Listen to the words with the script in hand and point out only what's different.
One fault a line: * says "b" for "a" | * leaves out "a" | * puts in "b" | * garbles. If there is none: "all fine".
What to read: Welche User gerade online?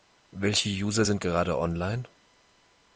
* puts in "sind"